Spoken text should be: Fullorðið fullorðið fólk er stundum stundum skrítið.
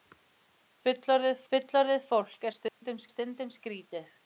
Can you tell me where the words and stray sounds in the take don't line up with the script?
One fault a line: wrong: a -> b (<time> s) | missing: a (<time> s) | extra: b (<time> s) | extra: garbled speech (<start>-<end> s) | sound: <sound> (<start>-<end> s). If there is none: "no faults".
sound: dropout (2.7-2.8 s)